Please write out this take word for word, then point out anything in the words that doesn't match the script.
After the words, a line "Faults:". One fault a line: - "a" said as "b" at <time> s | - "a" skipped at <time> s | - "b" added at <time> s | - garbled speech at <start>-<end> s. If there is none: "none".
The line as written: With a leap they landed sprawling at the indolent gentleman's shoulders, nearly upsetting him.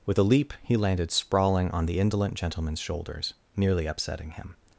With a leap he landed sprawling on the indolent gentleman's shoulders, nearly upsetting him.
Faults:
- "they" said as "he" at 0.6 s
- "at" said as "on" at 1.7 s